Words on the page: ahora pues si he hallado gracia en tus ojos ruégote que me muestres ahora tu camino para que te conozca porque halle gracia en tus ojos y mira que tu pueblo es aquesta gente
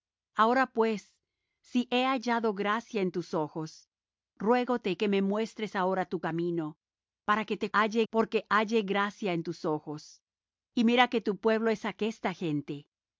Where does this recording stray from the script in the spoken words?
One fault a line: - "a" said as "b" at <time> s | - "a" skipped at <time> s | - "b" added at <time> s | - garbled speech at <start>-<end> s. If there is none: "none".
- "conozca" said as "halle" at 7.7 s